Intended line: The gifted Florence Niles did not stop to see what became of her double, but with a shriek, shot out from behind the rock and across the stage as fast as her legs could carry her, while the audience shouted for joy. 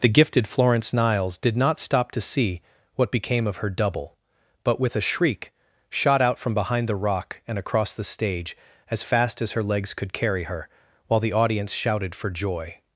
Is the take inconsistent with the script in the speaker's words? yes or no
no